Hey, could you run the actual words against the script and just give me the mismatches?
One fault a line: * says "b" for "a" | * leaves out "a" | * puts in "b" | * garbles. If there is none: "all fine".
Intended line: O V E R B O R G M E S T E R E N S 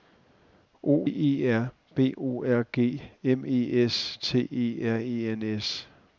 * leaves out "V"